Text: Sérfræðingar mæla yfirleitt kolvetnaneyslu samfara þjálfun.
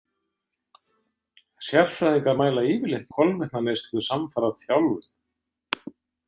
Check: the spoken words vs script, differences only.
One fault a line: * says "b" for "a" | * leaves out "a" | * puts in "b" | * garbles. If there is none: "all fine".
all fine